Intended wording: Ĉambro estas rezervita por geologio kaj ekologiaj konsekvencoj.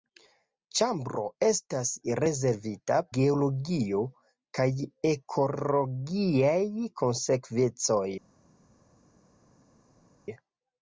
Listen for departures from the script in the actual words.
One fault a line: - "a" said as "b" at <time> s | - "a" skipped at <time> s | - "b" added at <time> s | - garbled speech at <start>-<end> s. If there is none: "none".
- "por" skipped at 3.0 s